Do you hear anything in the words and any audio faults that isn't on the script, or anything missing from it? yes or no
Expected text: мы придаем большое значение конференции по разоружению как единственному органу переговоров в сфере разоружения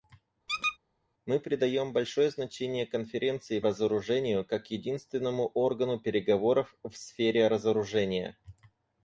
yes